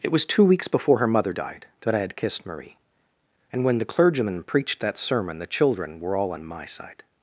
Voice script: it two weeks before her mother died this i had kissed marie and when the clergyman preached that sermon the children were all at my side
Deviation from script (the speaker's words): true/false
true